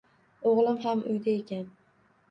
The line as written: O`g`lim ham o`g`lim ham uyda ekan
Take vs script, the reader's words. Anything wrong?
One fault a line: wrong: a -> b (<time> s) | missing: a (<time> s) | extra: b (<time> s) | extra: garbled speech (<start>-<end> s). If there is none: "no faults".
missing: o`g`lim ham (1.0 s)